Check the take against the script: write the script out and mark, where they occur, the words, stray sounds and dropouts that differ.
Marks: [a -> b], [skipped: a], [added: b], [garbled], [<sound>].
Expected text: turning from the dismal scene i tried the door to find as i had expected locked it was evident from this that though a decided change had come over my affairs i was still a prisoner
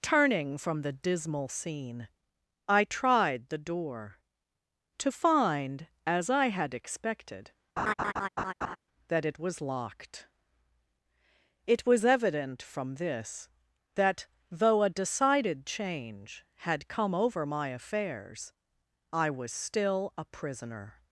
turning from the dismal scene i tried the door to find as i had expected [laugh] [added: that it was] locked it was evident from this that though a decided change had come over my affairs i was still a prisoner